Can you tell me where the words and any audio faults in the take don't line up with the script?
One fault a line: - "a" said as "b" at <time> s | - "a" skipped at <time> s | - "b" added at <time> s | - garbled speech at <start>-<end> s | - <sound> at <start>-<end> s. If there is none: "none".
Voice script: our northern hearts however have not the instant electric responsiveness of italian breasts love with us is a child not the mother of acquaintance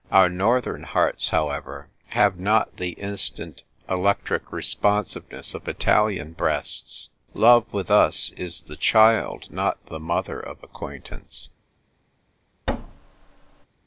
- "a" said as "the" at 8.6 s
- thud at 12.7-13.7 s